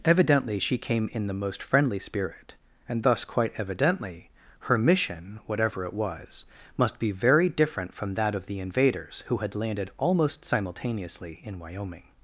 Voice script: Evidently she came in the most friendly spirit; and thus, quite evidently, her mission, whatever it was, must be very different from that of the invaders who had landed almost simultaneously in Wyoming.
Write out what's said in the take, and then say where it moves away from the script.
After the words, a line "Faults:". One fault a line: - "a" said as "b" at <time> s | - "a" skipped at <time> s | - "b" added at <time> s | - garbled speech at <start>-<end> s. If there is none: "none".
Evidently she came in the most friendly spirit; and thus, quite evidently, her mission, whatever it was, must be very different from that of the invaders who had landed almost simultaneously in Wyoming.
Faults:
none